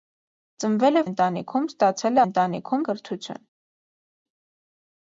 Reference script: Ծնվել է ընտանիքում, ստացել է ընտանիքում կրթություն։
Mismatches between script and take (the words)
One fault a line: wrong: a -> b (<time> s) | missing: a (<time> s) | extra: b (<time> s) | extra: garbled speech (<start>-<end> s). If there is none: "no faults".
no faults